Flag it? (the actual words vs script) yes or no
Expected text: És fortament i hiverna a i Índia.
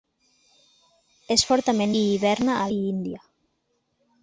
no